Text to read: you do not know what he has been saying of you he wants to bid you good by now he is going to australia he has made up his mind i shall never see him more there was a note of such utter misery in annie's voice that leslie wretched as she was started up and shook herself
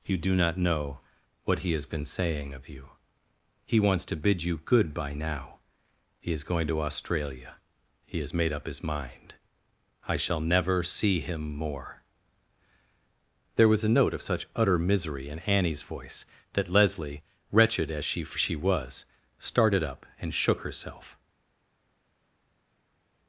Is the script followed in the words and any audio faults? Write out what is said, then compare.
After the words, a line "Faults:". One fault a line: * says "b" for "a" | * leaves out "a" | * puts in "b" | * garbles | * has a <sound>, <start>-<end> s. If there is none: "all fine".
you do not know what he has been saying of you he wants to bid you good by now he is going to australia he has made up his mind i shall never see him more there was a note of such utter misery in annie's voice that leslie wretched as she she was started up and shook herself
Faults:
* puts in "she"